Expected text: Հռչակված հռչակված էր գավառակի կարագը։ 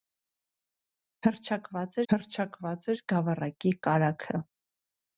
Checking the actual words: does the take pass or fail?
pass